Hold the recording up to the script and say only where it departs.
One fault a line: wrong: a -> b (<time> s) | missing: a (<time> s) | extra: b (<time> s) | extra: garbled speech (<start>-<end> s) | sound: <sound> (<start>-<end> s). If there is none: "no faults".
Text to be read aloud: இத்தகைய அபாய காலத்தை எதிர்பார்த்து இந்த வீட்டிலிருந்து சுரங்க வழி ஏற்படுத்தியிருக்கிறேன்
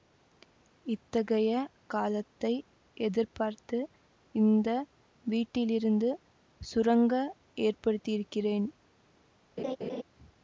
missing: அபாய (1.5 s)
missing: வழி (7.1 s)
sound: laugh (9.6-10.0 s)